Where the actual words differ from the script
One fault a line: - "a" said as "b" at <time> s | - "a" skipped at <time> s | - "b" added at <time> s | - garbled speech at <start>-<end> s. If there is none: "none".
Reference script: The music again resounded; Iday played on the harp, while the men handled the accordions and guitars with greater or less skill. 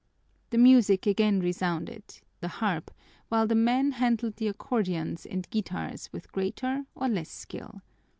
- "Iday played on" skipped at 2.2 s